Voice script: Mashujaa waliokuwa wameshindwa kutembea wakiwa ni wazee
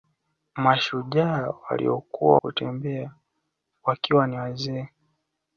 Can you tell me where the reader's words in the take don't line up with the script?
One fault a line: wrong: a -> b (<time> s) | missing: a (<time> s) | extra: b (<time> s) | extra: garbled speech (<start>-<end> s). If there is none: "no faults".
missing: wameshindwa (2.4 s)